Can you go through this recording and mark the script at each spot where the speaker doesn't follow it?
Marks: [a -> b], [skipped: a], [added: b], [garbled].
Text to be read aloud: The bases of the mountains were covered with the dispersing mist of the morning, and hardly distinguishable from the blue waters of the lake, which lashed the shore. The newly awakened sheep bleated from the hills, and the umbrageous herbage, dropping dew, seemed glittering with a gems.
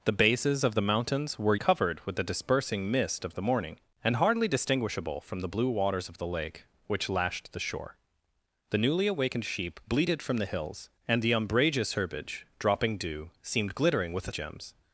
The bases of the mountains were covered with the dispersing mist of the morning, and hardly distinguishable from the blue waters of the lake, which lashed the shore. The newly awakened sheep bleated from the hills, and the umbrageous herbage, dropping dew, seemed glittering with a gems.